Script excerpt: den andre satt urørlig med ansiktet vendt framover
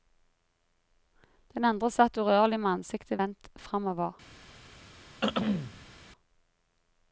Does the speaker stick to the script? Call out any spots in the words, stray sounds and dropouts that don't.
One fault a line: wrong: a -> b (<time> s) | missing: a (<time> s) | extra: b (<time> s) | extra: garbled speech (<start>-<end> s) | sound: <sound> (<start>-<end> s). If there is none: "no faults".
sound: throat clearing (5.2-5.9 s)